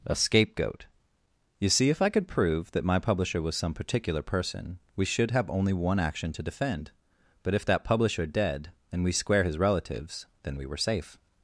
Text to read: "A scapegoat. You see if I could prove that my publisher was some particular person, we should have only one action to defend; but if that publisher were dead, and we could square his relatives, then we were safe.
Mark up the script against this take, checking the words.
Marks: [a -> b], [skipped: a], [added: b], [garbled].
"A scapegoat. You see if I could prove that my publisher was some particular person, we should have only one action to defend; but if that publisher [skipped: were] dead, and we [skipped: could] square his relatives, then we were safe.